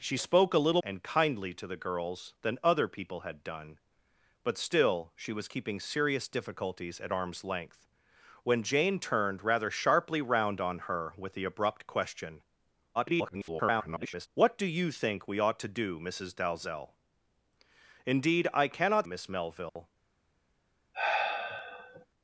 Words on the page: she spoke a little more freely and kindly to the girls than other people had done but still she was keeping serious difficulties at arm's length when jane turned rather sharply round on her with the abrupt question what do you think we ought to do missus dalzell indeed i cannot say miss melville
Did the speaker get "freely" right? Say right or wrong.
wrong